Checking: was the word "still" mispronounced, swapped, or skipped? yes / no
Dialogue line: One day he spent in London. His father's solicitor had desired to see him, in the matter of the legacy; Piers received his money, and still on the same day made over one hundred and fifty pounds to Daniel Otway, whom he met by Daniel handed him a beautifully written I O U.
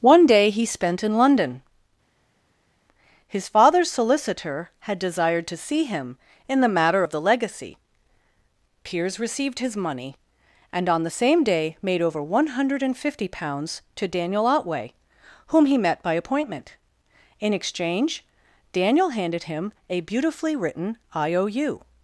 yes